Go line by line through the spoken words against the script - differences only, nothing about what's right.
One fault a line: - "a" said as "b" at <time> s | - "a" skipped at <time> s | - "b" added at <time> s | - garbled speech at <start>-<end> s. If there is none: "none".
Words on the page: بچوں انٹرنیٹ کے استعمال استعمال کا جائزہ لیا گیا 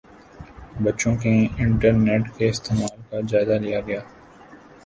- "کے" added at 1.1 s
- "استعمال" skipped at 3.0 s